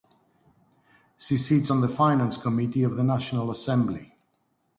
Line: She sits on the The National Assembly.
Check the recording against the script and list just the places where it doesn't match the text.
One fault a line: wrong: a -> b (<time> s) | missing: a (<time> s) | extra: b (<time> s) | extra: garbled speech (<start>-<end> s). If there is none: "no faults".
extra: Finance Committee of (1.9 s)